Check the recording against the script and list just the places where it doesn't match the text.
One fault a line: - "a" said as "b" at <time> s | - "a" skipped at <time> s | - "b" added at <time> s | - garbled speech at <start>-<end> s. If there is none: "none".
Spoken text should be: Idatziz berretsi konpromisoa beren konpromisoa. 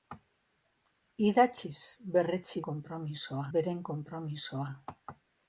none